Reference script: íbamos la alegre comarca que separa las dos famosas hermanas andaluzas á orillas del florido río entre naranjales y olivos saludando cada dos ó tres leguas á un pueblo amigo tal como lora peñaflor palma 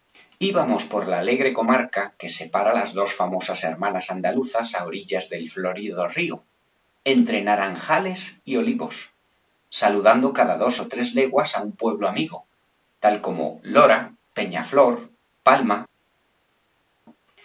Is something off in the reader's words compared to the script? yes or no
yes